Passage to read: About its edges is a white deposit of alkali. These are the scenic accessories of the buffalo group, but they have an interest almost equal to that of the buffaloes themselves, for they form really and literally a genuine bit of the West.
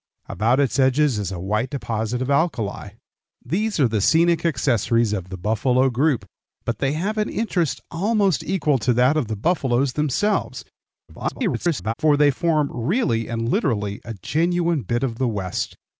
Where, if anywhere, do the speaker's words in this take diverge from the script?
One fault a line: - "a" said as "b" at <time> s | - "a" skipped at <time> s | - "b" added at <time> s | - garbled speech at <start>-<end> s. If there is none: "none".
- garbled speech at 11.1-11.9 s